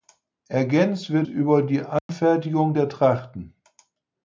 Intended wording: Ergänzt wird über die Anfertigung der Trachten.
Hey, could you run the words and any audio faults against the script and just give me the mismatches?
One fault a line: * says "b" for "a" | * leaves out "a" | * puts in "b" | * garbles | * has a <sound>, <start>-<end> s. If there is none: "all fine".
* has a dropout, 2.0-2.1 s